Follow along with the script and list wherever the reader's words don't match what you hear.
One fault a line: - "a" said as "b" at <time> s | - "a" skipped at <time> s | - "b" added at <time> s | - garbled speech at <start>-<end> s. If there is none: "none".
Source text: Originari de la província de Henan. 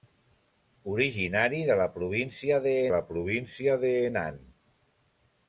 - "la província de" added at 2.9 s